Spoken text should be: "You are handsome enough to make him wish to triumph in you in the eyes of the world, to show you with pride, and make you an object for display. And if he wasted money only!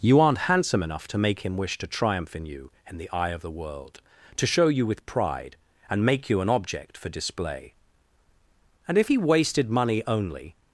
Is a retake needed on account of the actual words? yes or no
yes